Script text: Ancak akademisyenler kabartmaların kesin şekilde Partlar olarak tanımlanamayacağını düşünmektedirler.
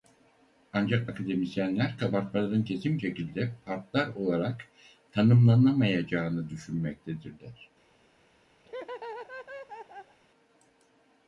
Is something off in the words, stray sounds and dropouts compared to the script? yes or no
yes